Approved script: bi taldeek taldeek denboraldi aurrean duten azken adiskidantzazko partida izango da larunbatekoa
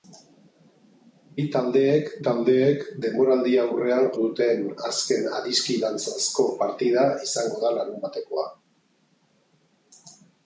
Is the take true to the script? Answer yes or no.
yes